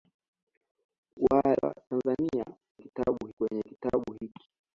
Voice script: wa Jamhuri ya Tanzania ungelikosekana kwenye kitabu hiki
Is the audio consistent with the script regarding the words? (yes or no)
no